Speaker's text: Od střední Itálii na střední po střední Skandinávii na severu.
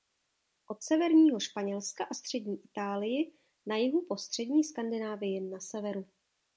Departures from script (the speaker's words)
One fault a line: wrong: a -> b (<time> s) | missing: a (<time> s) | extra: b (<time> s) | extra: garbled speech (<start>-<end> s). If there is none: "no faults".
extra: severního Španělska a (0.8 s)
wrong: střední -> jihu (3.8 s)